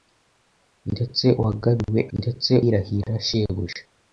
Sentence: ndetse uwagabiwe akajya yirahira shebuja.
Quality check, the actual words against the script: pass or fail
fail